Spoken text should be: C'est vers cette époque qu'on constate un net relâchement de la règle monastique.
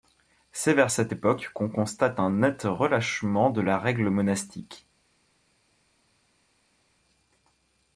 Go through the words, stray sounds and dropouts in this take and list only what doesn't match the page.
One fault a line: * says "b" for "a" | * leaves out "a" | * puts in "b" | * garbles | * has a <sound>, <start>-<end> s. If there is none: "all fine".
all fine